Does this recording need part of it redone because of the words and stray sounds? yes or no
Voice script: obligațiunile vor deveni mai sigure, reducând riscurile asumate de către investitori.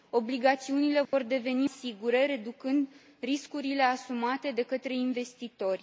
yes